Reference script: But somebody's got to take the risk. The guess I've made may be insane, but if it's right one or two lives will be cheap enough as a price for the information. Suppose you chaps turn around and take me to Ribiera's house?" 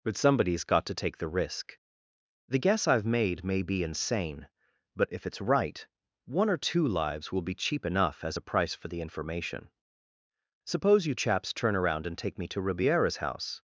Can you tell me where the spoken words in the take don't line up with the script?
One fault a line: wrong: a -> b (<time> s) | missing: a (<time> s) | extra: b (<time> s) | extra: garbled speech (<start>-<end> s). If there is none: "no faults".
no faults